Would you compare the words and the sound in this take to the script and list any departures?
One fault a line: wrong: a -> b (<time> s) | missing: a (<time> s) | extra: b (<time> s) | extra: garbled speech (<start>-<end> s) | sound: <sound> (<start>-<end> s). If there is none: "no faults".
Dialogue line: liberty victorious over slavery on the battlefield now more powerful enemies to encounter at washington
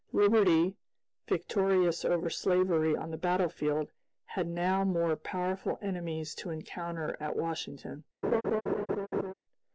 extra: had (4.2 s)
sound: laugh (8.2-9.3 s)